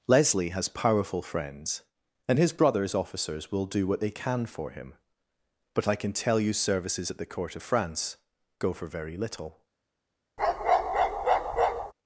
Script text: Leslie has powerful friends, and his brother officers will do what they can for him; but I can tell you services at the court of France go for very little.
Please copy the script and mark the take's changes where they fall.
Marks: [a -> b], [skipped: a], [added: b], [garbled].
Leslie has powerful friends, and his [brother -> brothers] officers will do what they can for him; but I can tell you services at the court of France go for very little.